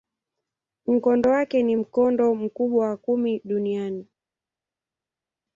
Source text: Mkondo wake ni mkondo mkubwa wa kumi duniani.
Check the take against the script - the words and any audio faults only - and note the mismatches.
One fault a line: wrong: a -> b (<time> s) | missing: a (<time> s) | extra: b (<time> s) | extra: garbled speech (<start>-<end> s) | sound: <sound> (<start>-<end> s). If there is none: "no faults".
no faults